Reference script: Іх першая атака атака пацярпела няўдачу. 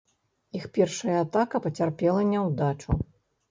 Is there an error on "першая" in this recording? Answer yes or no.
no